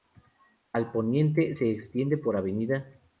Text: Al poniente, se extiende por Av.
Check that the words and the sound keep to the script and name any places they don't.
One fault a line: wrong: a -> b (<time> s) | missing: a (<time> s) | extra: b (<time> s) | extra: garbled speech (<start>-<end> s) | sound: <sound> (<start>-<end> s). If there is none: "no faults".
no faults